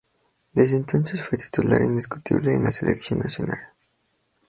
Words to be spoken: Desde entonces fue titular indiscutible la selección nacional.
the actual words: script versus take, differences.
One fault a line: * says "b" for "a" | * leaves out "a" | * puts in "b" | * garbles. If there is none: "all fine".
* puts in "en"